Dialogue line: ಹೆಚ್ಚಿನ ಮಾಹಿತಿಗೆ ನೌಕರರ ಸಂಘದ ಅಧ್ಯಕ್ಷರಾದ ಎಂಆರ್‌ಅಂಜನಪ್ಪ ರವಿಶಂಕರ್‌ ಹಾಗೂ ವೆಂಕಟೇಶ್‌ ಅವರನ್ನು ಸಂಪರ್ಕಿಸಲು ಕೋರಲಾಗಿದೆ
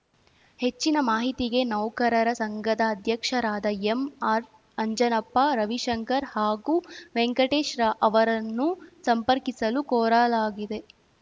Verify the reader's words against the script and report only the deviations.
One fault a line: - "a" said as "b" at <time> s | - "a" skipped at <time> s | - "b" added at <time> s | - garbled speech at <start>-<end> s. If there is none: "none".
none